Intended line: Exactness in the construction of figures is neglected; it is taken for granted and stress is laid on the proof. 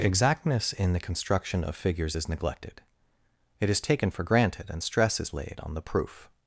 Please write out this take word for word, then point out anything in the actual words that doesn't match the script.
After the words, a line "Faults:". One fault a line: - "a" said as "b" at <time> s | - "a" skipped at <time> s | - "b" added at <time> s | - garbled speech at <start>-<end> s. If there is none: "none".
Exactness in the construction of figures is neglected; it is taken for granted and stress is laid on the proof.
Faults:
none